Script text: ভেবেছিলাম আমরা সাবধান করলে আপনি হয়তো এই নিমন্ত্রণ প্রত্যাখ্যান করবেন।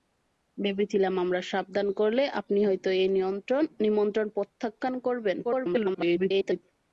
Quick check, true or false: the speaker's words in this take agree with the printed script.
false